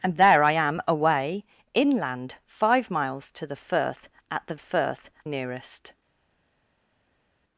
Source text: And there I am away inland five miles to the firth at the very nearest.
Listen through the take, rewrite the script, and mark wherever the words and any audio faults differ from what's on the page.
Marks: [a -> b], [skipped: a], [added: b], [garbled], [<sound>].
And there I am away inland five miles to the firth at the [very -> firth] nearest.